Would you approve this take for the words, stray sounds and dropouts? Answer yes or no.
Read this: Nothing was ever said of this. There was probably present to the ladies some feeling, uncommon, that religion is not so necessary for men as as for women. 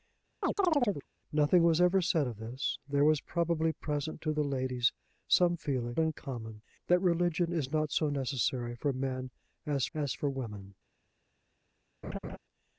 no